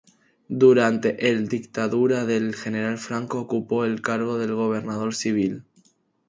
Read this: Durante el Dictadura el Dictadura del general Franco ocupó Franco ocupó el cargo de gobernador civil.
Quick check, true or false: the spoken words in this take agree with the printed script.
false